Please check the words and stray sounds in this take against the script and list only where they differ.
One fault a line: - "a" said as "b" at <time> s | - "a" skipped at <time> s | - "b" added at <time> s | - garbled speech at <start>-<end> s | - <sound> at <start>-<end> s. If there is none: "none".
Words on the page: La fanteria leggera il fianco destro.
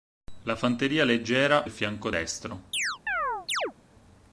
- chirp at 2.7-3.7 s